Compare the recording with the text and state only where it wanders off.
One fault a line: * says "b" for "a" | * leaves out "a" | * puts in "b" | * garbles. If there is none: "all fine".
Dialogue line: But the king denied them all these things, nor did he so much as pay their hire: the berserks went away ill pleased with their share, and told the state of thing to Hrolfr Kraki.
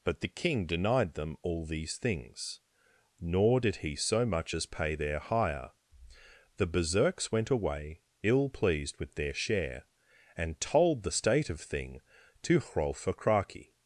all fine